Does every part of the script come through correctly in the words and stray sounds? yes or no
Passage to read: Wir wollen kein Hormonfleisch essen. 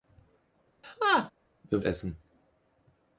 no